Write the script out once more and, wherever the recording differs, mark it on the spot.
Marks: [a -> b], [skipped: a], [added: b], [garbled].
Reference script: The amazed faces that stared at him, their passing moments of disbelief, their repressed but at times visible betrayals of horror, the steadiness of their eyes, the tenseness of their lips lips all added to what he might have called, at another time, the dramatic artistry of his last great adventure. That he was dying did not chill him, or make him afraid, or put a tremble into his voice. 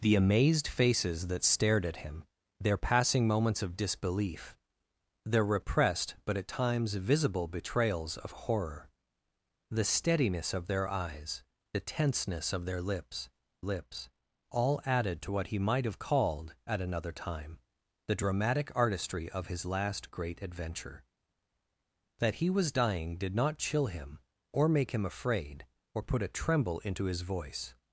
The amazed faces that stared at him, their passing moments of disbelief, their repressed but at times visible betrayals of horror, the steadiness of their eyes, the tenseness of their lips lips all added to what he might have called, at another time, the dramatic artistry of his last great adventure. That he was dying did not chill him, or make him afraid, or put a tremble into his voice.